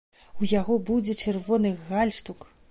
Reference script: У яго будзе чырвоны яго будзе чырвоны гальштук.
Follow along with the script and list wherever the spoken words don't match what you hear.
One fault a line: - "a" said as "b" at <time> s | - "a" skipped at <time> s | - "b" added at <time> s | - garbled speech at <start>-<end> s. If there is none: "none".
- "яго будзе чырвоны" skipped at 1.8 s